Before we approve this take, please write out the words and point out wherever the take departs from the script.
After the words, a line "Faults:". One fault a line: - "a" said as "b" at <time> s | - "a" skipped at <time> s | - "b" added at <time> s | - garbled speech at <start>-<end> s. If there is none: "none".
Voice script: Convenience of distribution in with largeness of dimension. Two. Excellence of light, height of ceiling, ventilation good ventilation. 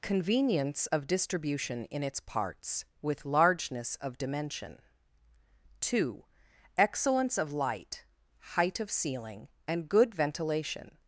Convenience of distribution in its parts, with largeness of dimension. Two. Excellence of light, height of ceiling, and good ventilation.
Faults:
- "its parts" added at 2.0 s
- "ventilation" said as "and" at 9.7 s